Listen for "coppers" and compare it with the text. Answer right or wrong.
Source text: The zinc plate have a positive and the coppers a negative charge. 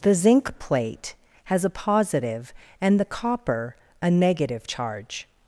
wrong